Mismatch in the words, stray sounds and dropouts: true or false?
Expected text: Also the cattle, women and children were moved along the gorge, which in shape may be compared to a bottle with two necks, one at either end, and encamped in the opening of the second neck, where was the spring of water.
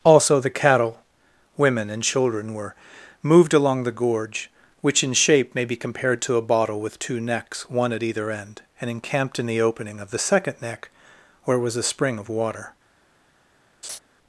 true